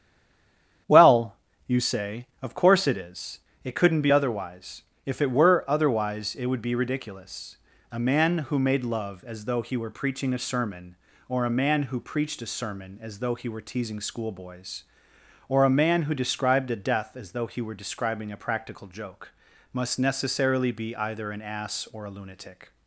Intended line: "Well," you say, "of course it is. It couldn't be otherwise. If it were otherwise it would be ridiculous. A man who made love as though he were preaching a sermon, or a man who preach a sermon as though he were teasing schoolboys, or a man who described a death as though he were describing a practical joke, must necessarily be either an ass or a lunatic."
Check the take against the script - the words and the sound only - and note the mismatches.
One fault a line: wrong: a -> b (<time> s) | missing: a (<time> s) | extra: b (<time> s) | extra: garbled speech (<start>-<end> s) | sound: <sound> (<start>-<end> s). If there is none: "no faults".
wrong: preach -> preached (12.0 s)